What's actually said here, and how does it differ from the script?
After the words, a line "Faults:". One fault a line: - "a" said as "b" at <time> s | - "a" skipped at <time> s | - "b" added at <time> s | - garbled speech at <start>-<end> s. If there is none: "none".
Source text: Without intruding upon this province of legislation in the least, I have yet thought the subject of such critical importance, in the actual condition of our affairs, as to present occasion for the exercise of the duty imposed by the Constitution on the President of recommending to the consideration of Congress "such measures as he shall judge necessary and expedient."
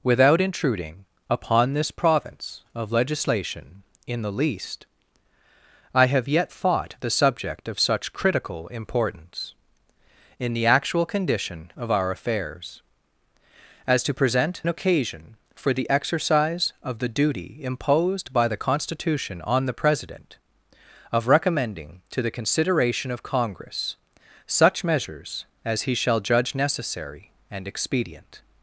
Without intruding upon this province of legislation in the least, I have yet thought the subject of such critical importance, in the actual condition of our affairs, as to present occasion for the exercise of the duty imposed by the Constitution on the President of recommending to the consideration of Congress "such measures as he shall judge necessary and expedient."
Faults:
none